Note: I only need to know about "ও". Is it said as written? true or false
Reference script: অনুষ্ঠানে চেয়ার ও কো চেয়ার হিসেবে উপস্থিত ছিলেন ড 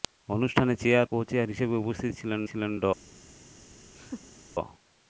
false